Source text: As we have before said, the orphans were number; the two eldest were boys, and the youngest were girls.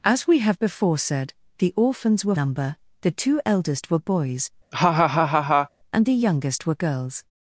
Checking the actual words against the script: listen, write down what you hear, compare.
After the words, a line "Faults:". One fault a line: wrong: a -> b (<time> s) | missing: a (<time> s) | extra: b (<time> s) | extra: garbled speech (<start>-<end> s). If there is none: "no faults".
As we have before said, the orphans were number; the two eldest were boys, and the youngest were girls.
Faults:
no faults